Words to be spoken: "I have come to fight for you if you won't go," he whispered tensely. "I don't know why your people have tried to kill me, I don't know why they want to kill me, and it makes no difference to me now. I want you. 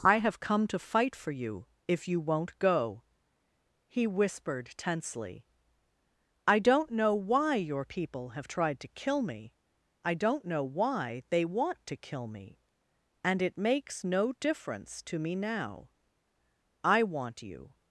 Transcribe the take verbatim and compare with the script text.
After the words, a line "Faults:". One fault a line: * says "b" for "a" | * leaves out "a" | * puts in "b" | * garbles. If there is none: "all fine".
"I have come to fight for you if you won't go," he whispered tensely. "I don't know why your people have tried to kill me, I don't know why they want to kill me, and it makes no difference to me now. I want you.
Faults:
all fine